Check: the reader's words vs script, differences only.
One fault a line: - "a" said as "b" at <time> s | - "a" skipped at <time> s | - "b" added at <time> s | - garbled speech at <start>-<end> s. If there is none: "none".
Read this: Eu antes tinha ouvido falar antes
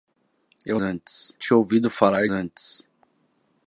none